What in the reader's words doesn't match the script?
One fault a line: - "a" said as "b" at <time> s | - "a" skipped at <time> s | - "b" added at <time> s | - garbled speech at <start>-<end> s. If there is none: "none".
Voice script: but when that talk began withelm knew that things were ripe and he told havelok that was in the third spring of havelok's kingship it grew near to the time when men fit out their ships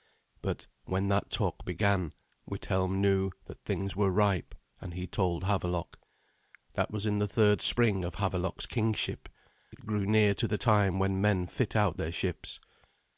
none